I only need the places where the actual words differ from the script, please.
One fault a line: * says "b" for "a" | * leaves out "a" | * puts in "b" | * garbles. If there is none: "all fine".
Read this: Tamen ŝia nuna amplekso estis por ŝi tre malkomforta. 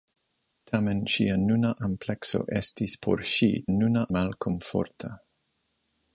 * says "nuna" for "tre"